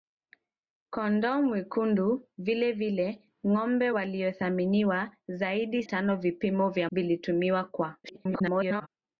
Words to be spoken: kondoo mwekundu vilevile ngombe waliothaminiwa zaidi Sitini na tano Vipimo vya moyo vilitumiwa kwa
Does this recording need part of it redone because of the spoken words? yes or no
yes